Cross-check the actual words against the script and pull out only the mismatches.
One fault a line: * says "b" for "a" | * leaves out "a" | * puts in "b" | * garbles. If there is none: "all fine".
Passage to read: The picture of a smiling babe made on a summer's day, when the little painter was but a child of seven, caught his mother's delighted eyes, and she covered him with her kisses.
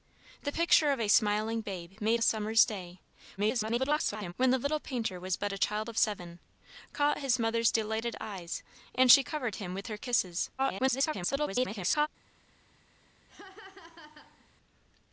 * leaves out "on"
* garbles
* garbles